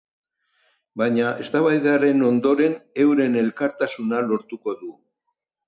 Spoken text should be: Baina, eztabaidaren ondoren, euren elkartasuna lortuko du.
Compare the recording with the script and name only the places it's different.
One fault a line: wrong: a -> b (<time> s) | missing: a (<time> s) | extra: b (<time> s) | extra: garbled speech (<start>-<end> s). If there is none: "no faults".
no faults